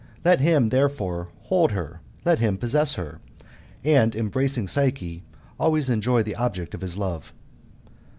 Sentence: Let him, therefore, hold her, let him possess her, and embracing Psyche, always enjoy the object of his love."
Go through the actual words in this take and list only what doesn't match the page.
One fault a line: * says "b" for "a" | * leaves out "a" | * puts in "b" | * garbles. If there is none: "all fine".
all fine